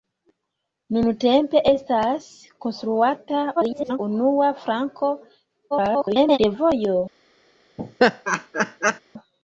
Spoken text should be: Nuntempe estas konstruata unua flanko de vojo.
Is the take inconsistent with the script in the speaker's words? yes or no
yes